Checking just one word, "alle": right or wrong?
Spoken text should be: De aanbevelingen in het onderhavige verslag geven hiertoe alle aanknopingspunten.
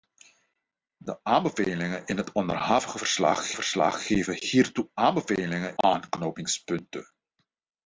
wrong